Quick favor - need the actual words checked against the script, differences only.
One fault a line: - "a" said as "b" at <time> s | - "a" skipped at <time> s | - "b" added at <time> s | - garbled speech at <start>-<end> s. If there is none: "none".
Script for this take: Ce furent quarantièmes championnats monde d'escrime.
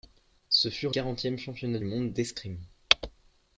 none